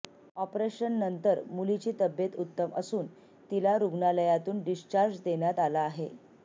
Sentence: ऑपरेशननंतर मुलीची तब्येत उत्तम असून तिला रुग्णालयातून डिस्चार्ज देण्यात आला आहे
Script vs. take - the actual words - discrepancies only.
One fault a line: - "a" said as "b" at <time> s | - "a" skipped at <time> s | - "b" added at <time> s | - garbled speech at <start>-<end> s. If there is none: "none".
none